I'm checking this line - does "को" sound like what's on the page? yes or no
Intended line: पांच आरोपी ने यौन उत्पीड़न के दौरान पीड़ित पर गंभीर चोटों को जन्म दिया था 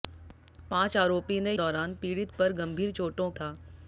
no